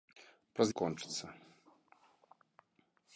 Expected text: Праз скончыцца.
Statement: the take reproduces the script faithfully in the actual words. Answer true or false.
true